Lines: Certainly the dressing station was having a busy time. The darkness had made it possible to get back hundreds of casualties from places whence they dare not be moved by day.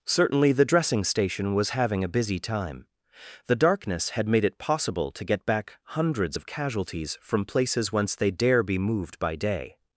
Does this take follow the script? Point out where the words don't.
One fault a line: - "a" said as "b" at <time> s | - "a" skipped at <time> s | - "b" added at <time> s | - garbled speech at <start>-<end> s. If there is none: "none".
- "not" skipped at 8.6 s